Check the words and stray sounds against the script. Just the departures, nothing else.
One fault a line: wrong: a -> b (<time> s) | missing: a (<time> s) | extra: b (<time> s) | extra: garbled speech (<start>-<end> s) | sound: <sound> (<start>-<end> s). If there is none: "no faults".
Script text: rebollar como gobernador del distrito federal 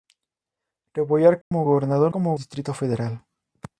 sound: dropout (1.4-1.5 s)
wrong: del -> como (2.1 s)